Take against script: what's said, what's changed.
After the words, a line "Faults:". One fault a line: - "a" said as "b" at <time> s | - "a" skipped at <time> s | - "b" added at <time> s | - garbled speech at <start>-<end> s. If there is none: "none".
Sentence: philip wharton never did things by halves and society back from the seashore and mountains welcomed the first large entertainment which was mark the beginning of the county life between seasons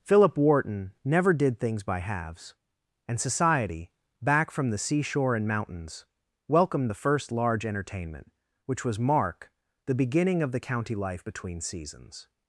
philip wharton never did things by halves and society back from the seashore and mountains welcomed the first large entertainment which was mark the beginning of the county life between seasons
Faults:
none